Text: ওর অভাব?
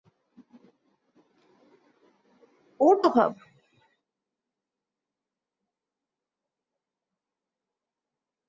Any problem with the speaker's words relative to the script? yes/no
no